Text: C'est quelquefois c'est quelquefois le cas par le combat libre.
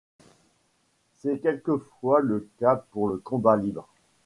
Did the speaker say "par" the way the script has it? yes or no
no